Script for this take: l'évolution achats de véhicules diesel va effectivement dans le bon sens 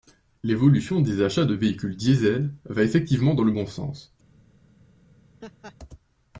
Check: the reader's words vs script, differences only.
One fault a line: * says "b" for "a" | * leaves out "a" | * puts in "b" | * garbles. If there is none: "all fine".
* puts in "des"